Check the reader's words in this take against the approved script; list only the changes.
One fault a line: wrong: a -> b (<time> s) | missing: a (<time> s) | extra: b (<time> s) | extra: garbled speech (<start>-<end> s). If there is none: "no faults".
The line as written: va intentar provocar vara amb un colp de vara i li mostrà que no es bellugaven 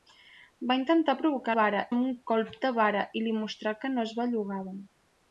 no faults